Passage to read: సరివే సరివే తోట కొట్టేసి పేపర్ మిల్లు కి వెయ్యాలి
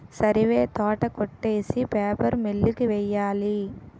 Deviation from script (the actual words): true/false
true